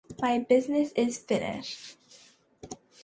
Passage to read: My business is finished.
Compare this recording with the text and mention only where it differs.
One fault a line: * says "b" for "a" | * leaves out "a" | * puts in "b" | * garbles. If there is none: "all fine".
all fine